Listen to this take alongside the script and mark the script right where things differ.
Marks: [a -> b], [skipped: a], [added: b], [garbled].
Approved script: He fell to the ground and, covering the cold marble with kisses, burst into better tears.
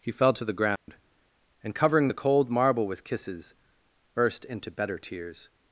He fell to the ground and, covering the cold marble with kisses, burst into better tears.